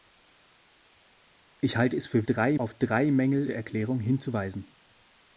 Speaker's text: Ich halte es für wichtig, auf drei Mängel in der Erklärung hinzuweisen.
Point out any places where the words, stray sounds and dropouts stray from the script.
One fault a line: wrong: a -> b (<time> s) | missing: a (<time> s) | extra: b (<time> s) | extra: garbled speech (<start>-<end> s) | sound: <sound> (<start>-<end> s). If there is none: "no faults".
wrong: wichtig -> drei (2.2 s)
missing: in (3.5 s)